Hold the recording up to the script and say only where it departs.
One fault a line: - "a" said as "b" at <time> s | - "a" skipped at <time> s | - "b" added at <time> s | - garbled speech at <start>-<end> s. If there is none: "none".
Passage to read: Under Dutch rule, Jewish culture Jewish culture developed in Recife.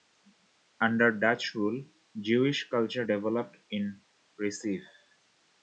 - "Jewish culture" skipped at 3.0 s